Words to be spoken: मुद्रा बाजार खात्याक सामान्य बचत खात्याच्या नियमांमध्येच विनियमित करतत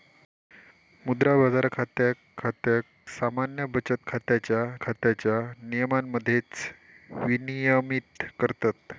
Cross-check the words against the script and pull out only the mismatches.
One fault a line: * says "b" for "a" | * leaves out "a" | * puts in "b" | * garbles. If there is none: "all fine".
* puts in "खात्याक"
* puts in "खात्याच्या"